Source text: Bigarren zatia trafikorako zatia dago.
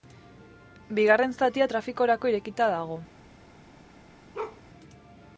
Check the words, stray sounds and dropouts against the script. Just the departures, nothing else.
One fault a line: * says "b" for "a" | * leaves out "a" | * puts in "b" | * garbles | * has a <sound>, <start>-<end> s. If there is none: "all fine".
* says "irekita" for "zatia"
* has a bark, 4.3-4.6 s